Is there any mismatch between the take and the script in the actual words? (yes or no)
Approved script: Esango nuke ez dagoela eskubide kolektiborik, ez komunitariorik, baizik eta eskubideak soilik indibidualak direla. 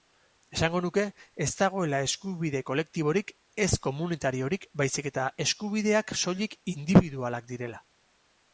no